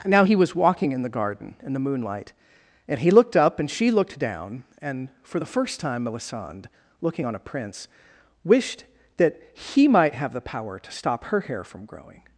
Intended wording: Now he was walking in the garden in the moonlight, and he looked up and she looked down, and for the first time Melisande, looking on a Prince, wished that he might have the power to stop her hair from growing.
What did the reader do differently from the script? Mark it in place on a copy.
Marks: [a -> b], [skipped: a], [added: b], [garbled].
Now he was walking in the garden in the moonlight, and he looked up and she looked down, and for the first time Melisande, looking on a Prince, wished that he might have the power to stop her hair from growing.